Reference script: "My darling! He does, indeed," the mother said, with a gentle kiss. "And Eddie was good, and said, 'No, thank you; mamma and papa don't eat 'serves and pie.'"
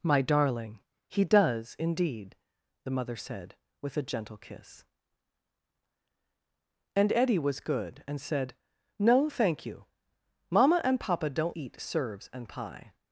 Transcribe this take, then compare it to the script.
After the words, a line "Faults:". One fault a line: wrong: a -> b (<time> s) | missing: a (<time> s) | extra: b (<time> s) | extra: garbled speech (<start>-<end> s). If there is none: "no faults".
"My darling! He does, indeed," the mother said, with a gentle kiss. "And Eddie was good, and said, 'No, thank you; mamma and papa don't eat 'serves and pie.'"
Faults:
no faults